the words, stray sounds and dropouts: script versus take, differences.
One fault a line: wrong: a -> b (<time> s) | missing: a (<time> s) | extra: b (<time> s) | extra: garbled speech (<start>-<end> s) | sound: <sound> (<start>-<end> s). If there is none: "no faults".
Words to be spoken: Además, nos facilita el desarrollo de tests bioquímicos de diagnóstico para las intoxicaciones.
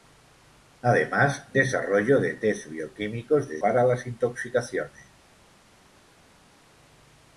missing: nos facilita el (1.5 s)
missing: diagnóstico (3.6 s)